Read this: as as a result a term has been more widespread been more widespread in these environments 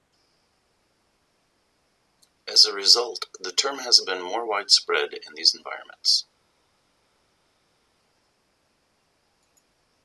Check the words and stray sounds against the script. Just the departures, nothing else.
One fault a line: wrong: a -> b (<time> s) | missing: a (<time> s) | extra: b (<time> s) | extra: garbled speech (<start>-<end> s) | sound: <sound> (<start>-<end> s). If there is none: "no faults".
missing: as (2.6 s)
wrong: a -> the (3.4 s)
missing: been more widespread (5.1 s)